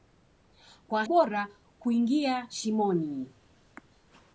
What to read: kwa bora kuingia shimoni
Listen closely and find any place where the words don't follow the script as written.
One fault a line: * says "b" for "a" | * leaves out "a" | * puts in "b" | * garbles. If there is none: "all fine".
all fine